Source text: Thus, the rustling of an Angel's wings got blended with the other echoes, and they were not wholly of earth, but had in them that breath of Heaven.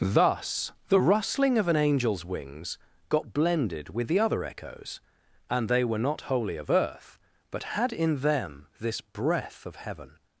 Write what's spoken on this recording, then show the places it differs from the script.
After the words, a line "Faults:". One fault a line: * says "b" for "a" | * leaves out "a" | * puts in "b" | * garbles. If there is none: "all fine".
Thus, the rustling of an Angel's wings got blended with the other echoes, and they were not wholly of earth, but had in them this breath of Heaven.
Faults:
* says "this" for "that"